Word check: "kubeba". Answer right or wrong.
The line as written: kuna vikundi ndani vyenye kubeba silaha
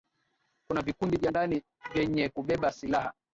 right